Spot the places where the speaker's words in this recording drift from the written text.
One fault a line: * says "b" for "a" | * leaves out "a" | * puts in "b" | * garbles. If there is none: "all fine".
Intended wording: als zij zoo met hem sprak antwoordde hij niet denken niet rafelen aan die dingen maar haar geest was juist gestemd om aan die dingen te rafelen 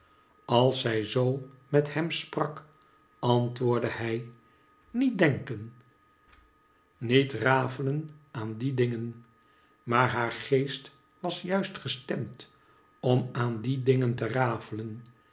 all fine